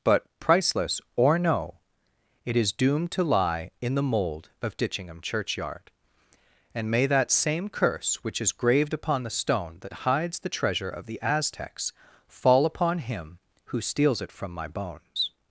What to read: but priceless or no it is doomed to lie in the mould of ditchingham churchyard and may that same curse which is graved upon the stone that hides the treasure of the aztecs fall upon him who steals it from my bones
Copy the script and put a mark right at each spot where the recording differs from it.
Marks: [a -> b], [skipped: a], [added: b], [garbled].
but priceless or no it is doomed to lie in the mould of ditchingham churchyard and may that same curse which is graved upon the stone that hides the treasure of the aztecs fall upon him who steals it from my bones